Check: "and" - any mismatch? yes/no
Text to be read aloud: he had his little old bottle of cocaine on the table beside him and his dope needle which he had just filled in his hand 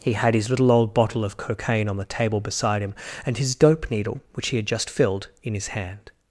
no